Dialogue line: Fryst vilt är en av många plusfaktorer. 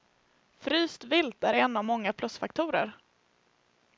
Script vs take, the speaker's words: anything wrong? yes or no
no